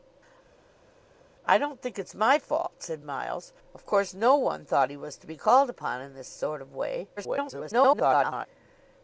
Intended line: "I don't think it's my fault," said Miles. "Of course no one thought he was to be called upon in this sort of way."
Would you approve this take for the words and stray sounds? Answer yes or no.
no